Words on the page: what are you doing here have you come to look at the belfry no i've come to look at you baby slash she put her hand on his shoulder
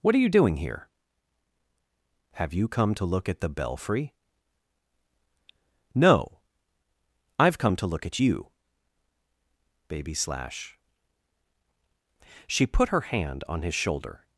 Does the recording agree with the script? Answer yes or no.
yes